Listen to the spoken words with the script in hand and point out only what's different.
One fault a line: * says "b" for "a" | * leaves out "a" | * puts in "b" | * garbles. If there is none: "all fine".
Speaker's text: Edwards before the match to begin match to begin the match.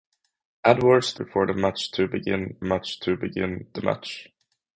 all fine